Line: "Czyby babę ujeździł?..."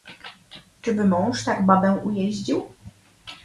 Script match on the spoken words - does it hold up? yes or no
no